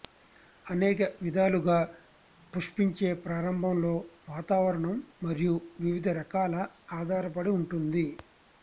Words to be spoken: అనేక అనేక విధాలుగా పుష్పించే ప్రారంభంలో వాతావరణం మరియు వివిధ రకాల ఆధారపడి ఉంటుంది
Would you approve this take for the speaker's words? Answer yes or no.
no